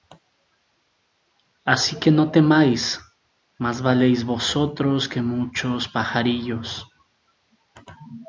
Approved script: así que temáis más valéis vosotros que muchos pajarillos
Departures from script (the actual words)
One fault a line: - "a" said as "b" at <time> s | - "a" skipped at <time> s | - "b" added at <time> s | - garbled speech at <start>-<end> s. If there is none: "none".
- "no" added at 2.1 s